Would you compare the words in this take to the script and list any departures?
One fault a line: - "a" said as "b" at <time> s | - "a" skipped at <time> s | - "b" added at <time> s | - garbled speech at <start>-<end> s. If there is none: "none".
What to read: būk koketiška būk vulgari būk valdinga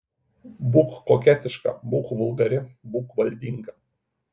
none